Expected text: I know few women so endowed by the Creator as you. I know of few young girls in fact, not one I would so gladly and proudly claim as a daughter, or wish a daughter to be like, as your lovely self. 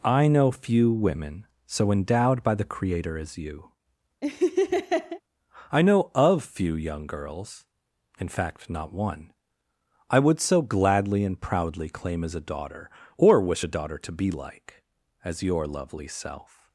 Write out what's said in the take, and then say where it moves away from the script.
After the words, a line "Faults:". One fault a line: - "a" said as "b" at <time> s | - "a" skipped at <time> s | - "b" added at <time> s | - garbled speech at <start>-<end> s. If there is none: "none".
I know few women so endowed by the Creator as you. I know of few young girls in fact, not one I would so gladly and proudly claim as a daughter, or wish a daughter to be like, as your lovely self.
Faults:
none